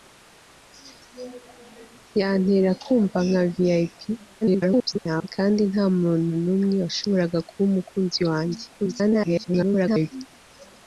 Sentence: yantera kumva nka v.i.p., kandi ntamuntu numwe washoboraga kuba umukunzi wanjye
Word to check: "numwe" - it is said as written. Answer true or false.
true